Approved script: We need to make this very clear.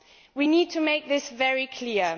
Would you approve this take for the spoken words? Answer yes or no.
yes